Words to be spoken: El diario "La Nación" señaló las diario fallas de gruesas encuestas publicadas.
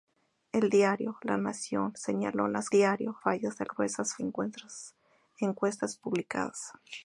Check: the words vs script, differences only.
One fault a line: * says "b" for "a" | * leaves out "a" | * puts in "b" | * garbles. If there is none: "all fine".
all fine